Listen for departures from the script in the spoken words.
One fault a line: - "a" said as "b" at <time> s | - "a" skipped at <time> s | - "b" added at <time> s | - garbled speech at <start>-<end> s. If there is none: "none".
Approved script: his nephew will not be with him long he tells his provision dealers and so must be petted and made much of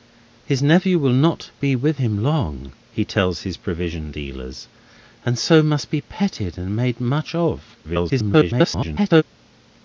- garbled speech at 7.8-9.2 s